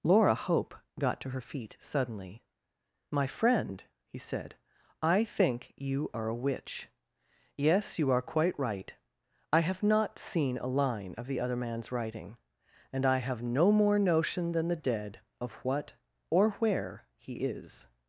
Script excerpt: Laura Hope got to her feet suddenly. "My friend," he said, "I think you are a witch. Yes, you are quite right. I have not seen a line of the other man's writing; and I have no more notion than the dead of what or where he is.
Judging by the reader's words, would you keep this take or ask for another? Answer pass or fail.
pass